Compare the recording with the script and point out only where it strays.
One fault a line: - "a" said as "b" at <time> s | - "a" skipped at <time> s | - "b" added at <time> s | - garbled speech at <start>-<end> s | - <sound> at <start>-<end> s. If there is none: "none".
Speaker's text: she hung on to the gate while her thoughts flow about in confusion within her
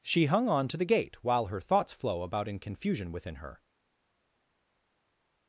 none